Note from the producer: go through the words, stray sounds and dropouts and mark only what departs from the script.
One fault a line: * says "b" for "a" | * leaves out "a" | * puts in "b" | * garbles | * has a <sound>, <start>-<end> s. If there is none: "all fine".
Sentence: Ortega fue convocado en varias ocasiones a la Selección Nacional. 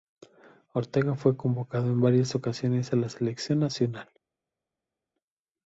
all fine